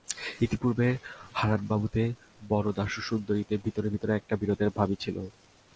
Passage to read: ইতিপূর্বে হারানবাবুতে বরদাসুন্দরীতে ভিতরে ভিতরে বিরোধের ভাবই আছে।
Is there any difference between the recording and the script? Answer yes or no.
yes